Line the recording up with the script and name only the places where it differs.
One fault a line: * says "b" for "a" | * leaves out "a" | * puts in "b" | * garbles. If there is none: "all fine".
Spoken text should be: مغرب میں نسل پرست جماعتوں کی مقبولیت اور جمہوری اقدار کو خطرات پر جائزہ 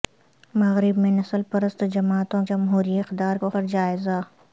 * leaves out "کی مقبولیت اور"
* leaves out "خطرات"